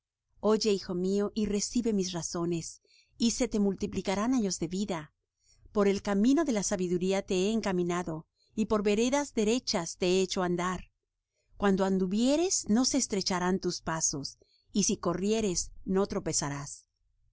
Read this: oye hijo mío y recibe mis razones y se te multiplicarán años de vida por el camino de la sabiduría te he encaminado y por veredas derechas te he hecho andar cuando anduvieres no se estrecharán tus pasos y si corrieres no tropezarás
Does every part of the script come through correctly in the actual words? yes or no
yes